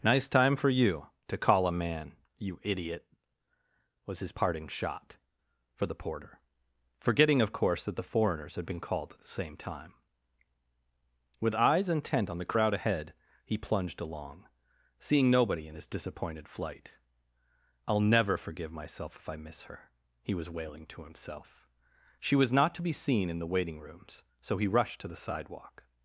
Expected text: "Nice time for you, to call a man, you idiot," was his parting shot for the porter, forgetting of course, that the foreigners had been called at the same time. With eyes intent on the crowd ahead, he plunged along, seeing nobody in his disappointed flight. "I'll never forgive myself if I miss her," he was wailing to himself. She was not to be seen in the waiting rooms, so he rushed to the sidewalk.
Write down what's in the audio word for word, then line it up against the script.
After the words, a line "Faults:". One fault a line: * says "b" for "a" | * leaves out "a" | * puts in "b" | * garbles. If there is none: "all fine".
"Nice time for you, to call a man, you idiot," was his parting shot for the porter, forgetting of course, that the foreigners had been called at the same time. With eyes intent on the crowd ahead, he plunged along, seeing nobody in his disappointed flight. "I'll never forgive myself if I miss her," he was wailing to himself. She was not to be seen in the waiting rooms, so he rushed to the sidewalk.
Faults:
all fine